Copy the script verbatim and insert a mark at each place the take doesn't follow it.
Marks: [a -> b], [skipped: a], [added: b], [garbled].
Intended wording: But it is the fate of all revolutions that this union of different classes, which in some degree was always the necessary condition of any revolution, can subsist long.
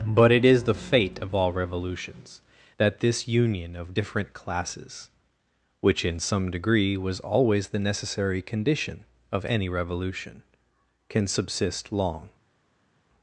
But it is the fate of all revolutions that this union of different classes, which in some degree was always the necessary condition of any revolution, can subsist long.